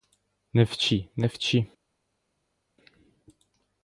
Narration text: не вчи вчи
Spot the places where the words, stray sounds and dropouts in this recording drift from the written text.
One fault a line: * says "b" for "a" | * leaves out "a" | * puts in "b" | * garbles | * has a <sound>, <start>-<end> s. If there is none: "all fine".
* puts in "не"